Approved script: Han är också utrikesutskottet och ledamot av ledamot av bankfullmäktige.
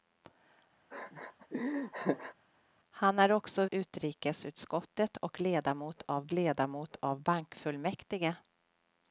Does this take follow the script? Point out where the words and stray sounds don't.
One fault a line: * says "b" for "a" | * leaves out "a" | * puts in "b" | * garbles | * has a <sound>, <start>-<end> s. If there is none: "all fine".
* has a laugh, 0.9-2.3 s